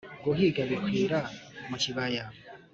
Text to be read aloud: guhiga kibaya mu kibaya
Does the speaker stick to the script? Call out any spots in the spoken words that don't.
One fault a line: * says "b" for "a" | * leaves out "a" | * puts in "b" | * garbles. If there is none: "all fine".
* says "bikwira" for "kibaya"